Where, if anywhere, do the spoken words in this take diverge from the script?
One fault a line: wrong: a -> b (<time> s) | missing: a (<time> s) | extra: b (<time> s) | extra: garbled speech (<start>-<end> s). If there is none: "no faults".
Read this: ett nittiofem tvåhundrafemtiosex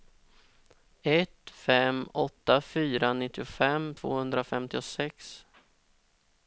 extra: fem åtta fyra (1.5 s)